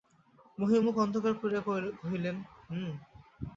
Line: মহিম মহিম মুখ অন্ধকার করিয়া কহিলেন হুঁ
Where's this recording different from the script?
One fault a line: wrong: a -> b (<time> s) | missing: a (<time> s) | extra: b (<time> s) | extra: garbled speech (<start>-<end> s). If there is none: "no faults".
missing: মহিম (0.8 s)